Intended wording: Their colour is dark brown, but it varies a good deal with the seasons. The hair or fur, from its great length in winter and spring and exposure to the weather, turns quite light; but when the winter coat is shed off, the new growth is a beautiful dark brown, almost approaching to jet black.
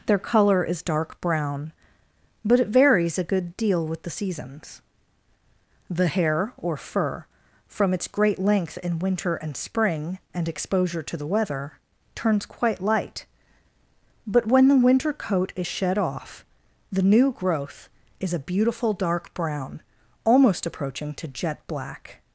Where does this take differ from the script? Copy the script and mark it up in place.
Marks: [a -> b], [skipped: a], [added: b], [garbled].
Their colour is dark brown, but it varies a good deal with the seasons. The hair or fur, from its great length in winter and spring and exposure to the weather, turns quite light; but when the winter coat is shed off, the new growth is a beautiful dark brown, almost approaching to jet black.